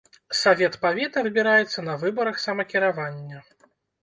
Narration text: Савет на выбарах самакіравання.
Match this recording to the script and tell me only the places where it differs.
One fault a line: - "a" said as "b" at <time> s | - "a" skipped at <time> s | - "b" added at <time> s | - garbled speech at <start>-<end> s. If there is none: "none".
- "павета выбіраецца" added at 0.8 s